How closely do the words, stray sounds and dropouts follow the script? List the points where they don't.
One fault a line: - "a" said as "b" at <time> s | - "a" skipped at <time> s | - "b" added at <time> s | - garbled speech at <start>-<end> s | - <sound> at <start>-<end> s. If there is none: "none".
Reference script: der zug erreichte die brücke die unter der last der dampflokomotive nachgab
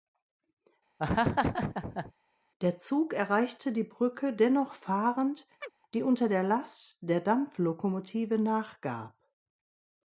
- laugh at 1.0-2.1 s
- "dennoch fahrend" added at 4.3 s
- chirp at 5.6-5.7 s